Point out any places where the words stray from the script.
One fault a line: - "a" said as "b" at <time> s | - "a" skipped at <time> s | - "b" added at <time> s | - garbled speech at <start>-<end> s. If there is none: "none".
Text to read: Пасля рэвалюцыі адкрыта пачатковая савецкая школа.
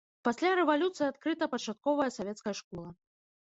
none